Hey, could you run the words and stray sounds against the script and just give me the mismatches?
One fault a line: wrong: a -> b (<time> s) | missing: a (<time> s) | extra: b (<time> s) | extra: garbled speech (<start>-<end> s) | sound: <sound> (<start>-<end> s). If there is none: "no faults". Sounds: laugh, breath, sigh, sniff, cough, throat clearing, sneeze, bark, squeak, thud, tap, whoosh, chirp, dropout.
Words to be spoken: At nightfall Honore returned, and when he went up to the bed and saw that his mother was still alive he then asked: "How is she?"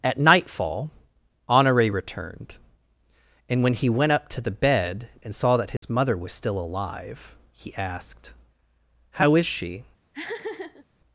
sound: dropout (5.8-5.8 s)
missing: then (7.7 s)
sound: laugh (10.1-10.9 s)